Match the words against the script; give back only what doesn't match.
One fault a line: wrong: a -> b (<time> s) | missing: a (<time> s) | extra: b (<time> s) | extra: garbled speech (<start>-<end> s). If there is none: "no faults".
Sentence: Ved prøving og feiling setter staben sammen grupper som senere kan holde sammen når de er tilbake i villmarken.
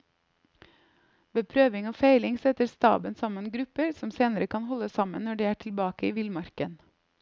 no faults